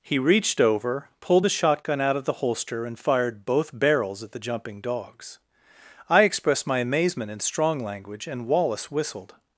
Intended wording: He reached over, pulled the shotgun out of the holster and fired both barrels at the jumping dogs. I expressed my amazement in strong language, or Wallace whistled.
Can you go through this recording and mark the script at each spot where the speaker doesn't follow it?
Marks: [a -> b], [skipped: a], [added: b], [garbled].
He reached over, pulled the shotgun out of the holster and fired both barrels at the jumping dogs. I expressed my amazement in strong language, [or -> and] Wallace whistled.